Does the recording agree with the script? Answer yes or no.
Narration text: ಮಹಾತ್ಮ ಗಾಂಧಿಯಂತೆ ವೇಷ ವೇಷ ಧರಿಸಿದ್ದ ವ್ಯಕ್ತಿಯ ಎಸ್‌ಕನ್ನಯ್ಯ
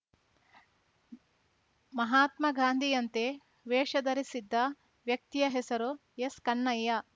no